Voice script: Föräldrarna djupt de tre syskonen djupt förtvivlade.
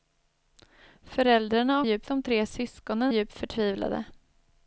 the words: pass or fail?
pass